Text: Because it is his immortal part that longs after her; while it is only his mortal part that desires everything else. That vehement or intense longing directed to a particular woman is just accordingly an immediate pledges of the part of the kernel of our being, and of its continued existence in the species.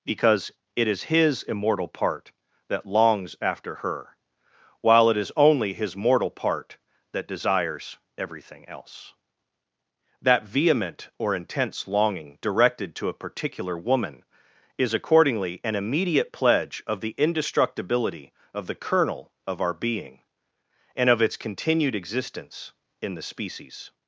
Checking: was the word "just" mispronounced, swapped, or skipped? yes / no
yes